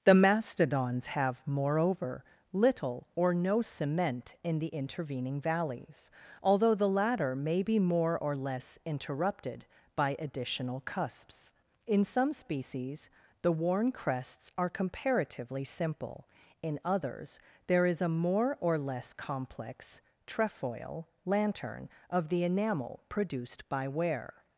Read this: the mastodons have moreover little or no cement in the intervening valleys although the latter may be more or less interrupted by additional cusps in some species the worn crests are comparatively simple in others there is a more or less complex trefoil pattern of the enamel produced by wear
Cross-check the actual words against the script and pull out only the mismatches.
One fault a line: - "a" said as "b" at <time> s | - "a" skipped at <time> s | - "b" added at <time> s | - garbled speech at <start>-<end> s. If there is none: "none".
- "pattern" said as "lantern" at 21.2 s